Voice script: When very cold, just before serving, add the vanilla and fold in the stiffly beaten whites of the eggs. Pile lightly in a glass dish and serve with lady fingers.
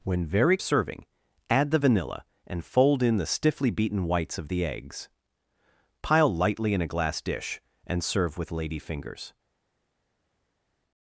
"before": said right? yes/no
no